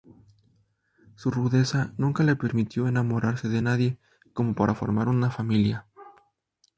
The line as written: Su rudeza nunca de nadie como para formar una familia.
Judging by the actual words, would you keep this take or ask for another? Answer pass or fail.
fail